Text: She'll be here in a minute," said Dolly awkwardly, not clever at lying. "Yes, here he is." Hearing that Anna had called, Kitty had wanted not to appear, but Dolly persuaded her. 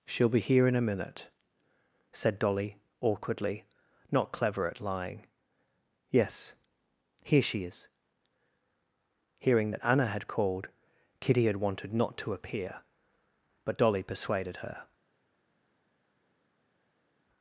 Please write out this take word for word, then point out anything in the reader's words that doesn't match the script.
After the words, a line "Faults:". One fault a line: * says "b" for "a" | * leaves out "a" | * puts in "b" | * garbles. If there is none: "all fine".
She'll be here in a minute," said Dolly awkwardly, not clever at lying. "Yes, here she is." Hearing that Anna had called, Kitty had wanted not to appear, but Dolly persuaded her.
Faults:
* says "she" for "he"